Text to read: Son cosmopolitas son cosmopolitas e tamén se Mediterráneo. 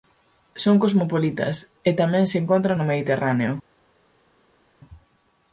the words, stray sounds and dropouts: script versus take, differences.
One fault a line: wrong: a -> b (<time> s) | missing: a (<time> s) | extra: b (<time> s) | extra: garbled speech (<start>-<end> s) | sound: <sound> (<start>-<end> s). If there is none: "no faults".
missing: son cosmopolitas (1.6 s)
extra: encontran no (2.4 s)